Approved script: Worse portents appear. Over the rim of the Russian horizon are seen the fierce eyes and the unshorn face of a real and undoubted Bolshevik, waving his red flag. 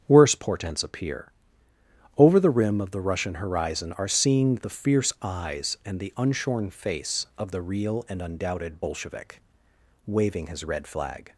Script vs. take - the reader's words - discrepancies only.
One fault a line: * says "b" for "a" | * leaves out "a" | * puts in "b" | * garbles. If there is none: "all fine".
* says "the" for "a"